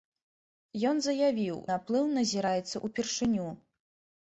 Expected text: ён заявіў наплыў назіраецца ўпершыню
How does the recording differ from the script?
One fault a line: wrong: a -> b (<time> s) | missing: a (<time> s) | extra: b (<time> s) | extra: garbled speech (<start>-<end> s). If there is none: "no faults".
no faults